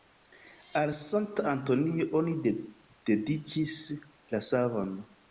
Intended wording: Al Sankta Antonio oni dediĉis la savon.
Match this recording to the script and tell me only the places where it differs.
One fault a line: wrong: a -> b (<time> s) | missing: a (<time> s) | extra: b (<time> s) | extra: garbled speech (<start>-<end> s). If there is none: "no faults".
no faults